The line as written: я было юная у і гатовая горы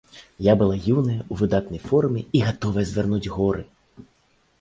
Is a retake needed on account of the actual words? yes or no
yes